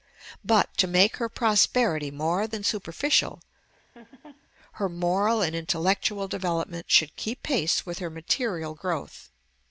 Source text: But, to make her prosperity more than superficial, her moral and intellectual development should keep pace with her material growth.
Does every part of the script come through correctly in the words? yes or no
yes